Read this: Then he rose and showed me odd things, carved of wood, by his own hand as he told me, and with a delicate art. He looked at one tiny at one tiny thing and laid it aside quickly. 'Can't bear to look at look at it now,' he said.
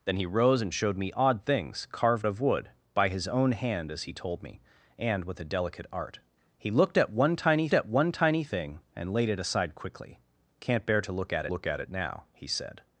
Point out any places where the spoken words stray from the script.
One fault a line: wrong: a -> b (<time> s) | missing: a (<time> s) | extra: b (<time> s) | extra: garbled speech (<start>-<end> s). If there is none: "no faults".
no faults